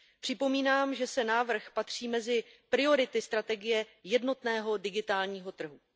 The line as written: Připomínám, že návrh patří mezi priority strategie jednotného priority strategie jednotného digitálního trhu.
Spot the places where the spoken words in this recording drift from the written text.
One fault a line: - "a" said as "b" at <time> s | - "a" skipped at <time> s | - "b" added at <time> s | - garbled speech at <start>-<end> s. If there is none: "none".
- "priority strategie jednotného" skipped at 4.8 s